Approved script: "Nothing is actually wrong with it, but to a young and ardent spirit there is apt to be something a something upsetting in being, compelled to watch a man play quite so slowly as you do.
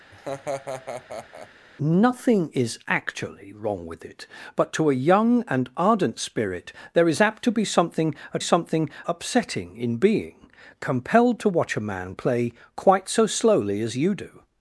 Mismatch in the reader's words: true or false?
false